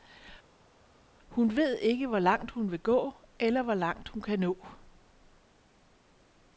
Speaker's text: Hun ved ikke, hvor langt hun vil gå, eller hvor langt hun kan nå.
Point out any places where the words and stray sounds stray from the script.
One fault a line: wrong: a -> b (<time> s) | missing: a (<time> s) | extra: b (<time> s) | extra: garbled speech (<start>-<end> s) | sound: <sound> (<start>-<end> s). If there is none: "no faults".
no faults